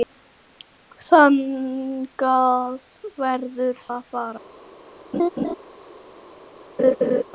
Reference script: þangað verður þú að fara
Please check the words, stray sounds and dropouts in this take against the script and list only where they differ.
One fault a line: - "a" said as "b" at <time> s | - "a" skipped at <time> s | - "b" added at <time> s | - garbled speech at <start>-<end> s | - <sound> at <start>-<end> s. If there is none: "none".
- "þú" skipped at 3.9 s
- laugh at 5.1-5.5 s
- laugh at 6.8-7.2 s